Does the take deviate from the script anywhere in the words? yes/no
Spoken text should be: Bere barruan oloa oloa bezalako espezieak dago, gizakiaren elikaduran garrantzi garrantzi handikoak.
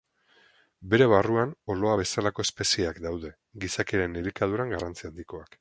yes